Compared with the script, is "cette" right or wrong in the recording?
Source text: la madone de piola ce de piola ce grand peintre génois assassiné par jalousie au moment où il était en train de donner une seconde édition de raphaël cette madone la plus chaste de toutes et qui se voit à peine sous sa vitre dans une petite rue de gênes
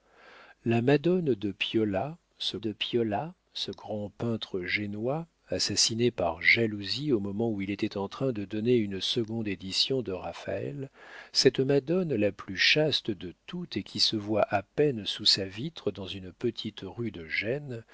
right